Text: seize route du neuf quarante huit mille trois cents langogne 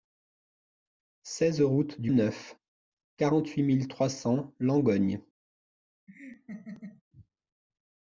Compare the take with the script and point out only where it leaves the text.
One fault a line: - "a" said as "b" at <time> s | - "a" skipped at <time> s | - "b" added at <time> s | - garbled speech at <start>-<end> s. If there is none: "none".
none